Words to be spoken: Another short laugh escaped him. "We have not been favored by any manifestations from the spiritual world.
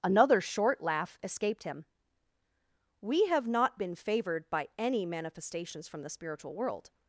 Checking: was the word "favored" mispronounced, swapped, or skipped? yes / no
no